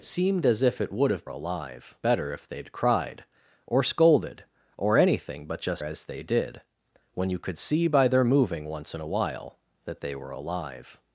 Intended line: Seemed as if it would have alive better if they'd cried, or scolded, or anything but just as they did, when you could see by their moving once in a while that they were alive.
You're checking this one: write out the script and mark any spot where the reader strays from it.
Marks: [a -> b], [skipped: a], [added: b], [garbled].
Seemed as if it would have alive better if they'd cried, or scolded, or anything but just as they did, when you could see by their moving once in a while that they were alive.